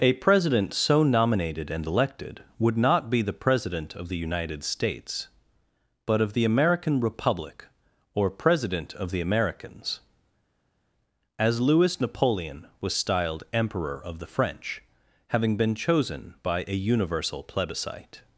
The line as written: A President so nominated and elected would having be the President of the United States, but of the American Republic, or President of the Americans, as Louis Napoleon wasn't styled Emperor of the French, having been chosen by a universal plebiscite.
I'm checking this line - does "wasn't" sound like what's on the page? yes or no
no